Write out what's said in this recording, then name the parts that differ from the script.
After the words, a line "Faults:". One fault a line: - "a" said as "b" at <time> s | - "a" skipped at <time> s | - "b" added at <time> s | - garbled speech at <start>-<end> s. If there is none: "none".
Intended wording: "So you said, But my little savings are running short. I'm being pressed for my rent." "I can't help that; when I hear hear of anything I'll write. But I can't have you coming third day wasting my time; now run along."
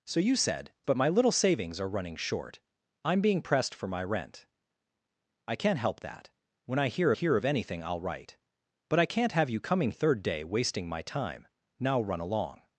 "So you said, But my little savings are running short. I'm being pressed for my rent." "I can't help that; when I hear hear of anything I'll write. But I can't have you coming third day wasting my time; now run along."
Faults:
none